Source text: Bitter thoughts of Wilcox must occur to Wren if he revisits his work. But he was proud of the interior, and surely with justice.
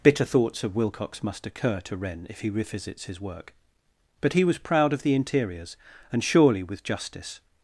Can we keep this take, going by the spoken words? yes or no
no